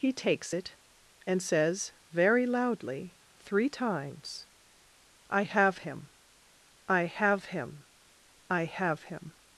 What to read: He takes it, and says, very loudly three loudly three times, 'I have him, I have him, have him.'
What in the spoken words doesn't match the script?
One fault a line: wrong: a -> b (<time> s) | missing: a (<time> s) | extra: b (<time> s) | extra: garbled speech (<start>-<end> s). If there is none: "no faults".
missing: loudly three (3.7 s)
extra: I (8.5 s)